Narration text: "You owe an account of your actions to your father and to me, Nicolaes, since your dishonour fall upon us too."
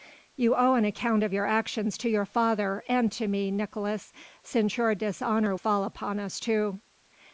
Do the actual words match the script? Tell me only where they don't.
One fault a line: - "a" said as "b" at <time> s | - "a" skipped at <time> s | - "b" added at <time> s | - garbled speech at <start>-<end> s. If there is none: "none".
none